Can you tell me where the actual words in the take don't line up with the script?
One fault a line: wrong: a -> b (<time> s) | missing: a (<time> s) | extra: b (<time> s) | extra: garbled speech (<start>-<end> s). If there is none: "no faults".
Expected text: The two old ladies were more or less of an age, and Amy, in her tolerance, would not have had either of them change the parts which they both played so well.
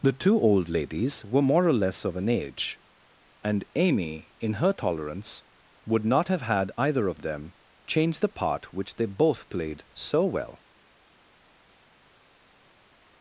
wrong: parts -> part (8.3 s)